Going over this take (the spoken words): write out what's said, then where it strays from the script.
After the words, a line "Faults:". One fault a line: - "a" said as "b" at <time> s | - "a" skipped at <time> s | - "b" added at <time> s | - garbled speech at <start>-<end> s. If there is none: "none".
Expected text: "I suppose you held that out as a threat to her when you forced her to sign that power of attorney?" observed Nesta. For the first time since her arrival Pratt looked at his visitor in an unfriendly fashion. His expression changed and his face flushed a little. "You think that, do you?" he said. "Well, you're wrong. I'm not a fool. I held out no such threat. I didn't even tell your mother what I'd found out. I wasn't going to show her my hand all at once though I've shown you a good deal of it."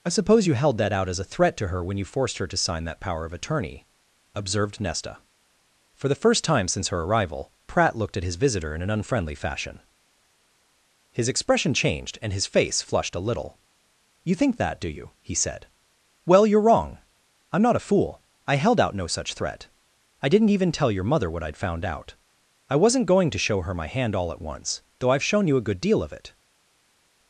"I suppose you held that out as a threat to her when you forced her to sign that power of attorney?" observed Nesta. For the first time since her arrival Pratt looked at his visitor in an unfriendly fashion. His expression changed and his face flushed a little. "You think that, do you?" he said. "Well, you're wrong. I'm not a fool. I held out no such threat. I didn't even tell your mother what I'd found out. I wasn't going to show her my hand all at once though I've shown you a good deal of it."
Faults:
none